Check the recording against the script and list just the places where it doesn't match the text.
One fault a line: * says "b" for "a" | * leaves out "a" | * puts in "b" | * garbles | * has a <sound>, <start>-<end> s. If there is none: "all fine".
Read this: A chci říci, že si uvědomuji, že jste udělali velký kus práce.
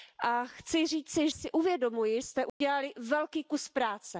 * leaves out "že"
* leaves out "že"
* has a dropout, 2.5-2.6 s